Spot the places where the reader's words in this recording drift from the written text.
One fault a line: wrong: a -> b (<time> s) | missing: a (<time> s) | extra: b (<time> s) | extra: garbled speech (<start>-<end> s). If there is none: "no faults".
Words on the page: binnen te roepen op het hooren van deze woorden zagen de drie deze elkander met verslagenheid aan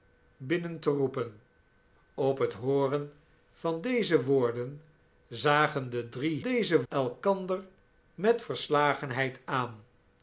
no faults